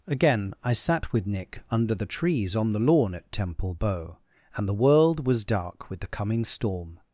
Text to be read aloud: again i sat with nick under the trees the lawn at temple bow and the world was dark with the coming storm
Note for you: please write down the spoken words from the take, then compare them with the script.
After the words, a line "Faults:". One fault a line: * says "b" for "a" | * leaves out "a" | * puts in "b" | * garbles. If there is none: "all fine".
again i sat with nick under the trees on the lawn at temple bow and the world was dark with the coming storm
Faults:
* puts in "on"